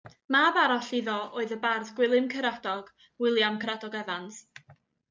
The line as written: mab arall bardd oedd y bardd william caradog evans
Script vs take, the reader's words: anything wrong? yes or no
yes